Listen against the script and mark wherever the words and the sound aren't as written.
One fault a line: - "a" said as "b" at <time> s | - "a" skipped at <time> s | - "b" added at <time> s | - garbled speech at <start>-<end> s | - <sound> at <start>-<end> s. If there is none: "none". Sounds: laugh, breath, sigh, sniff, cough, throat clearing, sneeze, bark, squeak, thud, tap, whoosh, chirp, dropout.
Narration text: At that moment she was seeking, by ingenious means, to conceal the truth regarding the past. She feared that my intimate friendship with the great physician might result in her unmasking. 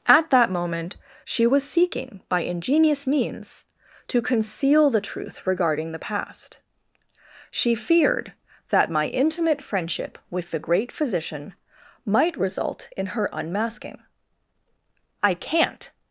- "I can't" added at 15.2 s